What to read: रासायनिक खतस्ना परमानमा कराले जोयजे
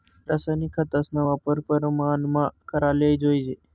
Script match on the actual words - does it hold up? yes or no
no